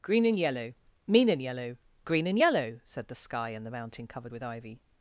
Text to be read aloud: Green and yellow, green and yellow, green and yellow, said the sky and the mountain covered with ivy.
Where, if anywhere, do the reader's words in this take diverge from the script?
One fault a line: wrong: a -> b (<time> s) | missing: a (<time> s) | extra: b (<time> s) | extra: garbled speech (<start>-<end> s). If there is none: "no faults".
wrong: green -> mean (1.1 s)